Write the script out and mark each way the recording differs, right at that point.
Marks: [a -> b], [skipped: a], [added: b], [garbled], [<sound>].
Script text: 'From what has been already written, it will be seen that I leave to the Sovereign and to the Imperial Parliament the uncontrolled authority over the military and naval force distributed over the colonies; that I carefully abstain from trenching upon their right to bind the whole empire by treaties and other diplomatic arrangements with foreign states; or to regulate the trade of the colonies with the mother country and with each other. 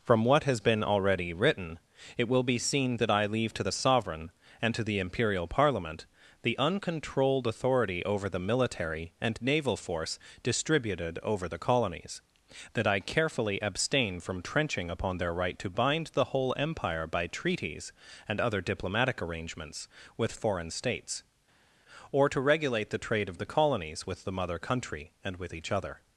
'From what has been already written, it will be seen that I leave to the Sovereign and to the Imperial Parliament the uncontrolled authority over the military and naval force distributed over the colonies; that I carefully abstain from trenching upon their right to bind the whole empire by treaties and other diplomatic arrangements with foreign states; or to regulate the trade of the colonies with the mother country and with each other.